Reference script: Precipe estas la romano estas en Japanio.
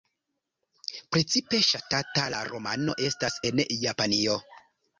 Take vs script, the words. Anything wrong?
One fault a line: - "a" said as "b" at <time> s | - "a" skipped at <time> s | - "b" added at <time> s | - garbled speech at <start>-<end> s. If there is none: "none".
- "estas" said as "ŝatata" at 1.7 s